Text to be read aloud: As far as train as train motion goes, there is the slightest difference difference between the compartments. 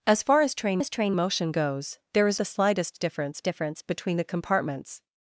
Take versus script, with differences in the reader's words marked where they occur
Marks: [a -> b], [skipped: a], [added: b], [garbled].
As far as train as train motion goes, there is the slightest difference difference between the compartments.